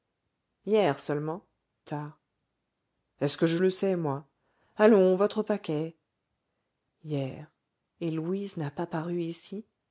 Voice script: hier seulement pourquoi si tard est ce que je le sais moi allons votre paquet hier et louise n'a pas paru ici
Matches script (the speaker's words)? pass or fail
fail